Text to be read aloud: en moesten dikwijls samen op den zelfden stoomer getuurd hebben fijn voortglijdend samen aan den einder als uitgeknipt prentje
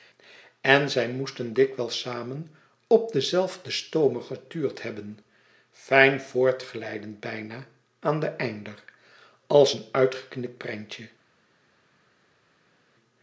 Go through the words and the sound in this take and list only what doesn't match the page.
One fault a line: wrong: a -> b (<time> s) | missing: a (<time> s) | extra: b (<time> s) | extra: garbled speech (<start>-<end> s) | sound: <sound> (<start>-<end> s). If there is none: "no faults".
extra: zij (0.9 s)
wrong: samen -> bijna (7.2 s)
extra: een (9.7 s)